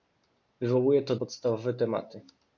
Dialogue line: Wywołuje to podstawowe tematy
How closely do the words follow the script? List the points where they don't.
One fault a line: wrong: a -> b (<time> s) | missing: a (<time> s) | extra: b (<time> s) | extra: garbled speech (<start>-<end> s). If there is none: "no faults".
no faults